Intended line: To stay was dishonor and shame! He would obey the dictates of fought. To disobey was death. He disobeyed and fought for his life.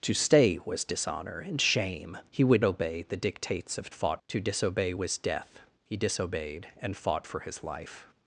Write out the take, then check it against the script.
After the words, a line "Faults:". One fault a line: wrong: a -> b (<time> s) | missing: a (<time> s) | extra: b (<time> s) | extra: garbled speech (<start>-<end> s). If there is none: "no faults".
To stay was dishonor and shame! He would obey the dictates of fought. To disobey was death. He disobeyed and fought for his life.
Faults:
no faults